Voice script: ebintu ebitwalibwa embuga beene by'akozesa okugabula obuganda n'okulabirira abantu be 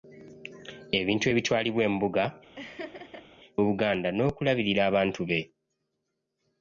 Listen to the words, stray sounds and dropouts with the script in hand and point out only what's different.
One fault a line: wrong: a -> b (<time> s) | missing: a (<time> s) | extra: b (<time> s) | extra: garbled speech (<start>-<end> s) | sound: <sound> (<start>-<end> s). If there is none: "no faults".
missing: beene by'akozesa okugabula (2.2 s)
sound: laugh (2.6-3.3 s)